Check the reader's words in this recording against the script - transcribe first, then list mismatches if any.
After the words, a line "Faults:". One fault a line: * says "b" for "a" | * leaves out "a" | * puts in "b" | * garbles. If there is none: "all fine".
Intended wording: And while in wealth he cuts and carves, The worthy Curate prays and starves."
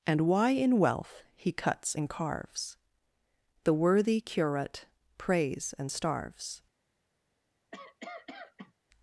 And why in wealth he cuts and carves, The worthy Curate prays and starves."
Faults:
* says "why" for "while"